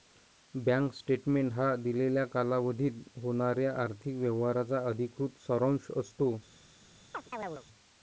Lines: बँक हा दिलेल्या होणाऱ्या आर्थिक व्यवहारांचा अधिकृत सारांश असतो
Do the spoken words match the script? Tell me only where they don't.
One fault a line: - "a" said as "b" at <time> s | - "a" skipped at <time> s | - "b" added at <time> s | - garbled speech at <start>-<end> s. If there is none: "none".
- "स्टेटमेंट" added at 0.9 s
- "कालावधीत" added at 2.3 s